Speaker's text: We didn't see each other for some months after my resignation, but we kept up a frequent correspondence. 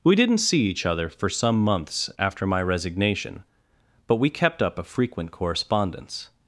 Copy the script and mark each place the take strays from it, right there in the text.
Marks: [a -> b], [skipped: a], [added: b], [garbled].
We didn't see each other for some months after my resignation, but we kept up a frequent correspondence.